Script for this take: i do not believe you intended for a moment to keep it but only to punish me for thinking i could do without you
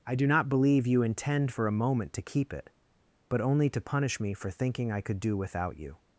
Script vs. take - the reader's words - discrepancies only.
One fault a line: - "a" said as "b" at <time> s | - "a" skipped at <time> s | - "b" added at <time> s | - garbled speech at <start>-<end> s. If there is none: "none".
- "intended" said as "intend" at 1.0 s